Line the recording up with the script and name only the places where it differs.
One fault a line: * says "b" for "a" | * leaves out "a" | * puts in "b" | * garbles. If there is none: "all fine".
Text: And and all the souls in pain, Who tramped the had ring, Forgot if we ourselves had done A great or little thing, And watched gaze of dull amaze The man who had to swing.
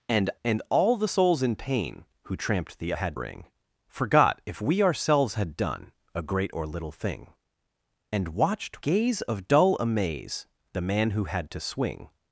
all fine